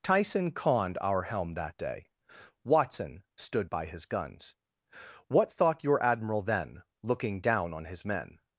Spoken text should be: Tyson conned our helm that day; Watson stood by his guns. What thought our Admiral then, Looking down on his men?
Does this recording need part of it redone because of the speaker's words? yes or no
yes